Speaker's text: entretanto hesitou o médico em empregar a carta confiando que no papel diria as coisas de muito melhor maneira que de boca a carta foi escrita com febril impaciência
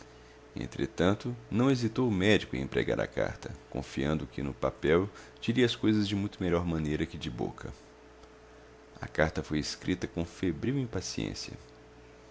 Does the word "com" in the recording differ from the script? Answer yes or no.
no